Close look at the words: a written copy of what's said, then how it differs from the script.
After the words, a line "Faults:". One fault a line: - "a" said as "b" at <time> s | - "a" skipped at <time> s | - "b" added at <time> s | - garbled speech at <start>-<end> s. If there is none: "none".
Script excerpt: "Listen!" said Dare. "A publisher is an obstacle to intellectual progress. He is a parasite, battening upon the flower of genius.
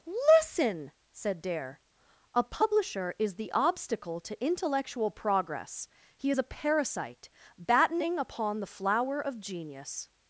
"Listen!" said Dare. "A publisher is the obstacle to intellectual progress. He is a parasite, battening upon the flower of genius.
Faults:
- "an" said as "the" at 3.4 s